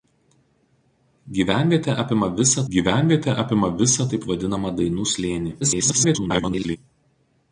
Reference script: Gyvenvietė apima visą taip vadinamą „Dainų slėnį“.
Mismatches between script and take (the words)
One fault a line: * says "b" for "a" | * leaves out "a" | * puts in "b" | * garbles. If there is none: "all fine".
* puts in "gyvenvietė apima visą"
* garbles